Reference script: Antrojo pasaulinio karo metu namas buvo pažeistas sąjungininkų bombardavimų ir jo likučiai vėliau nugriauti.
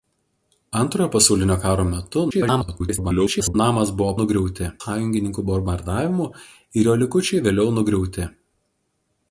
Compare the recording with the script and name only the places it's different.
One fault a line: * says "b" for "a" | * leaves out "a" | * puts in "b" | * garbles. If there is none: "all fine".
* garbles
* says "nugriauti" for "pažeistas"